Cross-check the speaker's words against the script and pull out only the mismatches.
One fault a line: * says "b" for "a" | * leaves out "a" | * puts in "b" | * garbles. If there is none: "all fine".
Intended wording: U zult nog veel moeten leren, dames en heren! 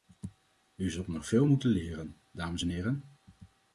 all fine